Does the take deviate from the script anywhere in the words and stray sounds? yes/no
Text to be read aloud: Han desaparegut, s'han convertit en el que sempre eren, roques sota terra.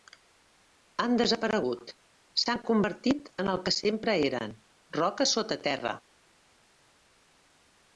no